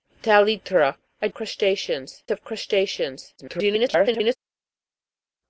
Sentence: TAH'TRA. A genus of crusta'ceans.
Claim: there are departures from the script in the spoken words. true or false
true